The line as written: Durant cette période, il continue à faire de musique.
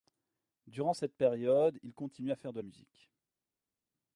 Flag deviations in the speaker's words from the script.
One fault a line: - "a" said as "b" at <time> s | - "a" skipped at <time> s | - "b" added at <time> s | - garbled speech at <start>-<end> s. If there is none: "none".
none